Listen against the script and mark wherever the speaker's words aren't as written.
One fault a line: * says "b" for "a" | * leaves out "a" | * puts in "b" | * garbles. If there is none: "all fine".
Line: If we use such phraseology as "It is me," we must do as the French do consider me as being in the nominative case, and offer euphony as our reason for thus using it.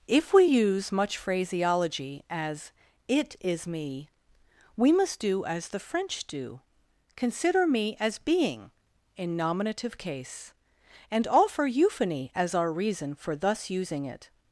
* says "much" for "such"
* leaves out "the"